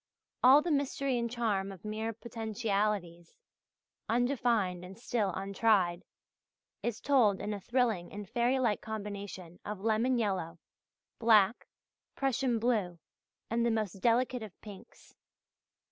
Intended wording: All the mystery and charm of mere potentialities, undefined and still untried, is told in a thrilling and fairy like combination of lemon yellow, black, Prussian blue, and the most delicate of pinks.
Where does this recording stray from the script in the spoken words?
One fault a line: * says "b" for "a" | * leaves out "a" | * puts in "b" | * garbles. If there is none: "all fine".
all fine